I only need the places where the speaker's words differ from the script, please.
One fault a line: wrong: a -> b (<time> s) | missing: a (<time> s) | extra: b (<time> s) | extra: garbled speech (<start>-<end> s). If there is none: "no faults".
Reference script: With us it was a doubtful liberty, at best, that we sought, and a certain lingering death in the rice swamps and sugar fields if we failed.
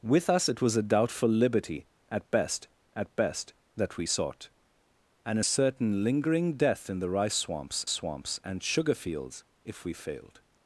extra: at best (2.9 s)
extra: swamps (7.9 s)